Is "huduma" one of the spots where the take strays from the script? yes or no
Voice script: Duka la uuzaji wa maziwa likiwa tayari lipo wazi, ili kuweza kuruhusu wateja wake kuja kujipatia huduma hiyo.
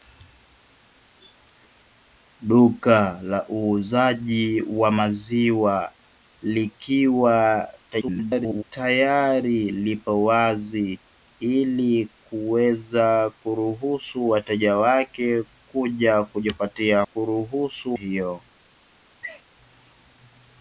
yes